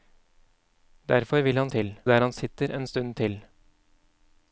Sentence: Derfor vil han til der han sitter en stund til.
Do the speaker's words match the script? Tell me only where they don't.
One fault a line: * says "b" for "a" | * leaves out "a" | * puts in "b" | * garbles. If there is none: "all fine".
all fine